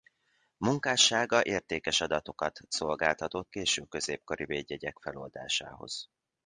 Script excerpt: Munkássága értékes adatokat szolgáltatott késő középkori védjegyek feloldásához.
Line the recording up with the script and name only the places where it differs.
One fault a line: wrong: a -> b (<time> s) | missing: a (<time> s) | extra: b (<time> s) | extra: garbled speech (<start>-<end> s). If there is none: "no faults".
no faults